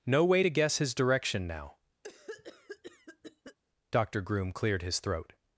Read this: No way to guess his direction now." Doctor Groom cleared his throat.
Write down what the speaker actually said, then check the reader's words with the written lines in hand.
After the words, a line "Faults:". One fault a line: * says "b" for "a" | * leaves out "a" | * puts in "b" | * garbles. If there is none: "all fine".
No way to guess his direction now." Doctor Groom cleared his throat.
Faults:
all fine